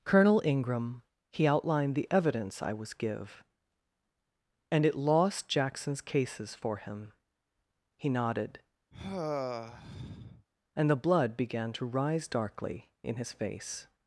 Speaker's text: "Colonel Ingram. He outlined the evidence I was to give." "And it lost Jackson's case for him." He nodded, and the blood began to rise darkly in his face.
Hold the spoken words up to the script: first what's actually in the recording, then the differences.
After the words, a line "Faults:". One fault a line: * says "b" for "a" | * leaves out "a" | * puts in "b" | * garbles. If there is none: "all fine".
"Colonel Ingram. He outlined the evidence I was give." "And it lost Jackson's cases for him." He nodded, and the blood began to rise darkly in his face.
Faults:
* leaves out "to"
* says "cases" for "case"